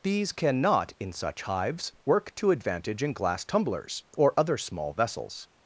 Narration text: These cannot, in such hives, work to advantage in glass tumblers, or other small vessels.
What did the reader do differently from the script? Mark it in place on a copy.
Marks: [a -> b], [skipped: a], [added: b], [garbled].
These cannot, in such hives, work to advantage in glass tumblers, or other small vessels.